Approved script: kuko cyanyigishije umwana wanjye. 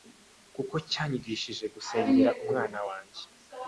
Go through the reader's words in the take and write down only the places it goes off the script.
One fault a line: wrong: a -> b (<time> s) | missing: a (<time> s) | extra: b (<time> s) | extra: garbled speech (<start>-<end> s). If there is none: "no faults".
extra: gusengera (1.8 s)